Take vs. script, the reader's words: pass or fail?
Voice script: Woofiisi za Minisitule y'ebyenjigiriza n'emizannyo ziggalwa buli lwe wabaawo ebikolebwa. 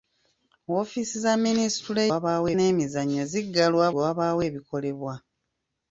fail